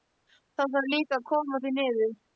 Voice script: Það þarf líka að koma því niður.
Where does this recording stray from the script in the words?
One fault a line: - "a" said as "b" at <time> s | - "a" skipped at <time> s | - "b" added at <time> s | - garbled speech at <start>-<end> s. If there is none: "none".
none